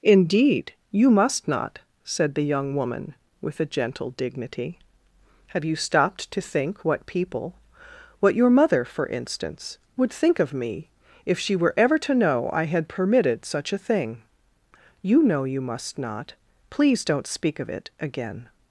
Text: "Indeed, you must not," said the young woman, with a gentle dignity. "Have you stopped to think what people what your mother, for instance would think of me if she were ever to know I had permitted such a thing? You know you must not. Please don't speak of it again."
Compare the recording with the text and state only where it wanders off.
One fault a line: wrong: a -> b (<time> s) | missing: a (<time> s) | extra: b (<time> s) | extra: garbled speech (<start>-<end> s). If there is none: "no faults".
no faults